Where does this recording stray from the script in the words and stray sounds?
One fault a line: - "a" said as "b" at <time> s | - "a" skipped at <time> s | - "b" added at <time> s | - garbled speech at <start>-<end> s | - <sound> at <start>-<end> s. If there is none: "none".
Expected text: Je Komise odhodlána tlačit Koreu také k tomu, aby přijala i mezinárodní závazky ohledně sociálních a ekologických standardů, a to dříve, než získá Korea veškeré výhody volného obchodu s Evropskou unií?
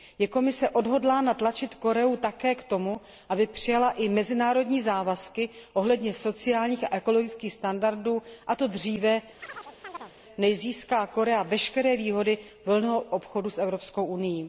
- chirp at 9.4-10.1 s